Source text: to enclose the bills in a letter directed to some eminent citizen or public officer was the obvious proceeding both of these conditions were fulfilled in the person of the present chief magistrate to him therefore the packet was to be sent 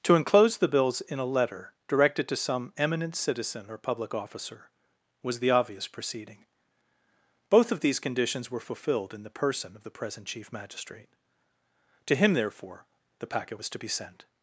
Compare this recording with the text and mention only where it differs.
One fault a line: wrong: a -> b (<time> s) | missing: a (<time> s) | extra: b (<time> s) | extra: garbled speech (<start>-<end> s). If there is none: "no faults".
no faults